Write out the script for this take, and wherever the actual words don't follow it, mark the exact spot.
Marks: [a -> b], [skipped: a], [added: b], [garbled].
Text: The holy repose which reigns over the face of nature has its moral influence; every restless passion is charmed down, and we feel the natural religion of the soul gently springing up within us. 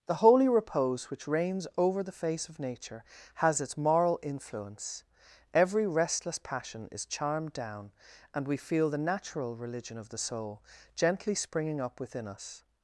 The holy repose which reigns over the face of nature has its moral influence; every restless passion is charmed down, and we feel the natural religion of the soul gently springing up within us.